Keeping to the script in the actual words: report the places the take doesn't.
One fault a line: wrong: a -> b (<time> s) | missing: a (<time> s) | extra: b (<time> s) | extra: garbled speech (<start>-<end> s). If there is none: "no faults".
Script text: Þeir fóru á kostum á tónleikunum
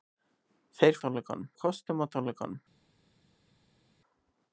wrong: fóru -> tónleikunum (1.0 s)